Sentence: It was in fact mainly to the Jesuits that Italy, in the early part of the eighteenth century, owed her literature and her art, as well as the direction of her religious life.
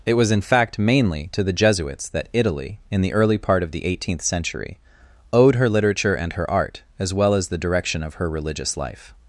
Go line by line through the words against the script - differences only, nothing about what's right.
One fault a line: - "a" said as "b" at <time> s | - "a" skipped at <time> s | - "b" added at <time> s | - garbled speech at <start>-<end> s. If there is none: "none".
none